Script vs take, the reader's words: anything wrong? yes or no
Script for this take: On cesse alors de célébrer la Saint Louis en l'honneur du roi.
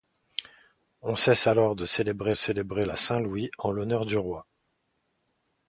yes